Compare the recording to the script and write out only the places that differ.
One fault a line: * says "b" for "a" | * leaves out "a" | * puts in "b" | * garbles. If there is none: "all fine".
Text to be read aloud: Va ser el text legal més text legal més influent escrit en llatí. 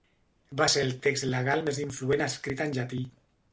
* leaves out "text legal més"